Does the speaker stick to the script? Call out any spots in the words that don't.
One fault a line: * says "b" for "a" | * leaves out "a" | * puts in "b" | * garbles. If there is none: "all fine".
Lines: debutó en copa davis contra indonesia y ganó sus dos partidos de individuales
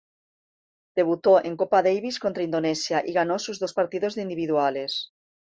all fine